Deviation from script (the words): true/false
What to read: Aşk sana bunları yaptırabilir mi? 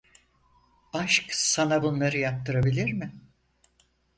false